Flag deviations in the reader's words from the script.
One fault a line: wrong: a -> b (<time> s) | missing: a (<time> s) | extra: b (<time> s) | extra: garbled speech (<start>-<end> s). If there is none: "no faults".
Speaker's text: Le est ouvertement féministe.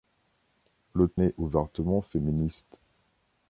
no faults